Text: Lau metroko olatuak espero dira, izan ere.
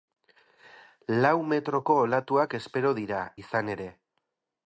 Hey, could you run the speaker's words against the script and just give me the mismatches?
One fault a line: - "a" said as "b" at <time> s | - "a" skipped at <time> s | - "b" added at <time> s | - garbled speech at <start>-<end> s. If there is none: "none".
none